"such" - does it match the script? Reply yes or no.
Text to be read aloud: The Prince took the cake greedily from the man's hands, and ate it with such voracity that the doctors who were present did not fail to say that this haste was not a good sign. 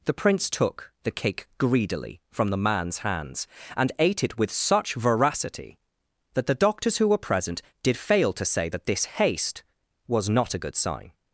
yes